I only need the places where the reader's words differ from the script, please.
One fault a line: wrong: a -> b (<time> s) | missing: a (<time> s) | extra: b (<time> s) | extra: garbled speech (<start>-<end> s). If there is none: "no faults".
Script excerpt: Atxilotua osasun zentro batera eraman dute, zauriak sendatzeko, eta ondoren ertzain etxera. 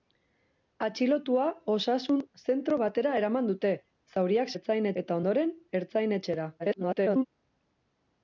wrong: sendatzeko -> ertzain (4.6 s)
extra: garbled speech (6.6-7.3 s)